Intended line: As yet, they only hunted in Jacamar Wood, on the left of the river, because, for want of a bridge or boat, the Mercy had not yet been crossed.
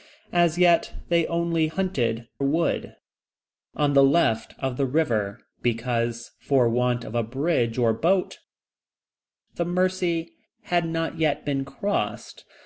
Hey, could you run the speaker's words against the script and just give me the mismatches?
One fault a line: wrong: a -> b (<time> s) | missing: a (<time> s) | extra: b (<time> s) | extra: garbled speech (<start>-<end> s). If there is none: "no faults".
missing: in Jacamar (2.3 s)